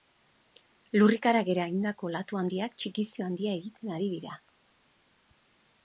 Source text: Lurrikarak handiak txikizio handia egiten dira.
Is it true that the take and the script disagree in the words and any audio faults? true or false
true